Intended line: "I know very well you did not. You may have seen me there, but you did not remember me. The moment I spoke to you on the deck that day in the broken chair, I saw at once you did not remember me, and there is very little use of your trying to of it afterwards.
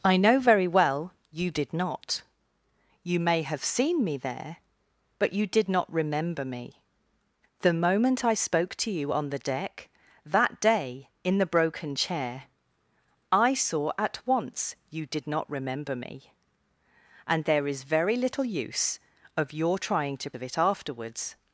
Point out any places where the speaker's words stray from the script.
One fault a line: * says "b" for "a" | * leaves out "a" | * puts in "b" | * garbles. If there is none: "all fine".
all fine